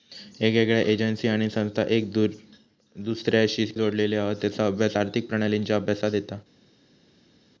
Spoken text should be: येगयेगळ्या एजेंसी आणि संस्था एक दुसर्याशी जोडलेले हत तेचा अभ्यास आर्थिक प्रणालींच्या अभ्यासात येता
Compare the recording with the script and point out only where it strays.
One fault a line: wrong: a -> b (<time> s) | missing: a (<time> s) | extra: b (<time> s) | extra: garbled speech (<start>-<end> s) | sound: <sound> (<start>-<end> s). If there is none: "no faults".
no faults